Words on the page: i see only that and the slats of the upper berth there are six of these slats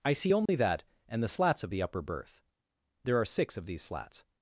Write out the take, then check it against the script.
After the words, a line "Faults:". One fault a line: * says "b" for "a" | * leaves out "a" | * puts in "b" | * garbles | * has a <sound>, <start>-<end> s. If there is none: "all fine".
i see only that and the slats of the upper berth there are six of these slats
Faults:
* has a dropout, 0.5-0.5 s